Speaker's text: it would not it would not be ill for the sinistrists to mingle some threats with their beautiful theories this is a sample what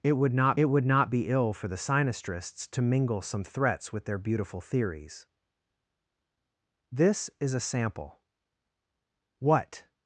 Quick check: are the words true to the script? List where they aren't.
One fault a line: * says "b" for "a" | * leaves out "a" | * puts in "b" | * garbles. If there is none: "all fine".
all fine